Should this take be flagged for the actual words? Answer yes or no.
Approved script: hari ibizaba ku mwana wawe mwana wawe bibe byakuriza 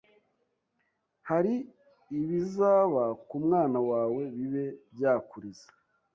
yes